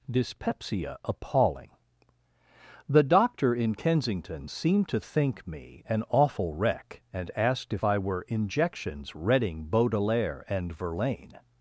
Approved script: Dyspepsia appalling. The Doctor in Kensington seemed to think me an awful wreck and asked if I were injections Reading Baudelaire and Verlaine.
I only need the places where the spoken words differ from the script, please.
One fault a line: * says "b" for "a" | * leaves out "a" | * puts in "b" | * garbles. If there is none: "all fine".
all fine